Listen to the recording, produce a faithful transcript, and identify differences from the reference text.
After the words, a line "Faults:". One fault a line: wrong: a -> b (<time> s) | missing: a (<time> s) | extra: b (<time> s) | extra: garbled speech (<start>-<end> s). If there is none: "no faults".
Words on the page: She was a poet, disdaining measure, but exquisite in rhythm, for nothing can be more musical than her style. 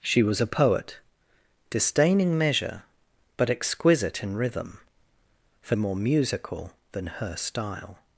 She was a poet, disdaining measure, but exquisite in rhythm, for more musical than her style.
Faults:
missing: nothing can be (5.8 s)